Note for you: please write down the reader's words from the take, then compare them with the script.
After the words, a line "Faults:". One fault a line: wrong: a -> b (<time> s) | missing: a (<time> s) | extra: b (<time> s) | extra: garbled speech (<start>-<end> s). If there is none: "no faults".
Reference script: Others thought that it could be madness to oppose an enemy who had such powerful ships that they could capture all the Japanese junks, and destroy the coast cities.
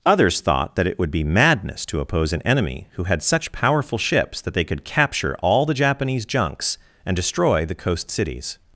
Others thought that it would be madness to oppose an enemy who had such powerful ships that they could capture all the Japanese junks, and destroy the coast cities.
Faults:
wrong: could -> would (1.0 s)